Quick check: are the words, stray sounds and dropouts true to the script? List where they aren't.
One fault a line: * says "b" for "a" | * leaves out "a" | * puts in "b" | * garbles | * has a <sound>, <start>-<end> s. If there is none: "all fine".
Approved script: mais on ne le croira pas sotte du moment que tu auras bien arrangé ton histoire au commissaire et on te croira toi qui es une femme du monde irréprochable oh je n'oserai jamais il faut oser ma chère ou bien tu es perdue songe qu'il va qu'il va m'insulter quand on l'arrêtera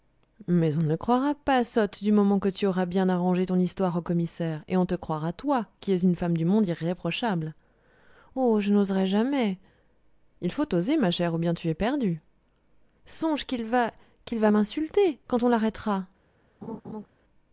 * has a laugh, 16.6-17.1 s